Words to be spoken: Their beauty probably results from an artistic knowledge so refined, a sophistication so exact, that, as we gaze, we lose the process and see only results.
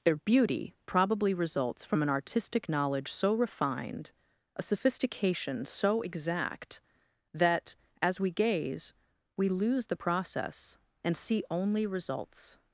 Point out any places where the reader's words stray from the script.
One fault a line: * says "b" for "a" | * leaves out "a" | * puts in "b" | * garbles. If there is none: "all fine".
all fine